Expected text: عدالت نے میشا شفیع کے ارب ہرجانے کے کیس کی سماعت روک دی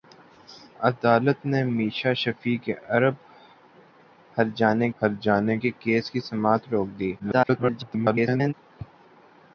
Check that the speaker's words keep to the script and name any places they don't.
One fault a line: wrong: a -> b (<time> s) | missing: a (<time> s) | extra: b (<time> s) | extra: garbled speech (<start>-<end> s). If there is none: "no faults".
extra: ہرجانے (5.0 s)
extra: garbled speech (7.2-8.5 s)